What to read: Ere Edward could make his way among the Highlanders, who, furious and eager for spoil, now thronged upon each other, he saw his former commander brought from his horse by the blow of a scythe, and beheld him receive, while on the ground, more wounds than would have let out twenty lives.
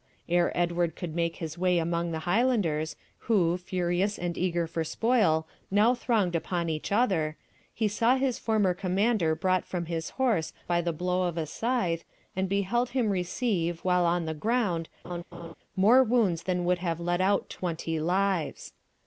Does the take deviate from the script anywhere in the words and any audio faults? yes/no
yes